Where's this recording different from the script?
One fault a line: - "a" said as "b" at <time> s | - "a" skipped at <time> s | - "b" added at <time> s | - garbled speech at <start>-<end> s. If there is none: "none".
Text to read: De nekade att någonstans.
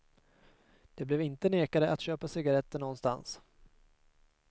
- "blev inte" added at 1.1 s
- "köpa cigaretter" added at 2.0 s